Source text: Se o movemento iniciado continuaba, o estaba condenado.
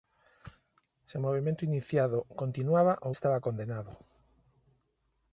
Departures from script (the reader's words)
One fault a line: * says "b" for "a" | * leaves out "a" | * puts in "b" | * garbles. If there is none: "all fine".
all fine